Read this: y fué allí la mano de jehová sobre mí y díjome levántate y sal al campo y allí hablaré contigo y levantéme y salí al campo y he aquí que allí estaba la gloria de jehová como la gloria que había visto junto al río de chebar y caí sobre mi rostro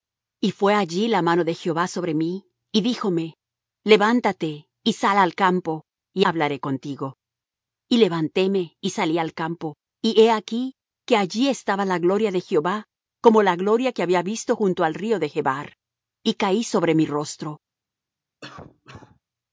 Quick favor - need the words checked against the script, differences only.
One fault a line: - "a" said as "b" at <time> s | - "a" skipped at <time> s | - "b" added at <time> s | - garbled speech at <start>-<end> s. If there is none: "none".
- "allí" skipped at 6.2 s